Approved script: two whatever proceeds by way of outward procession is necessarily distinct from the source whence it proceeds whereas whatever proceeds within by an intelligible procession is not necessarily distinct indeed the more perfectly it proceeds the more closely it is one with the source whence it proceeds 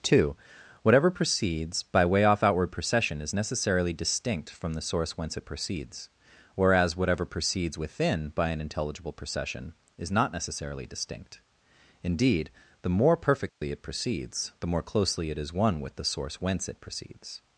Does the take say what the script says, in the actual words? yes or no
no